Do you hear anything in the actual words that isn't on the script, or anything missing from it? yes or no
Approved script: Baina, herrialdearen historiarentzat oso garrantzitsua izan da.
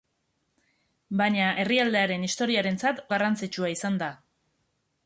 yes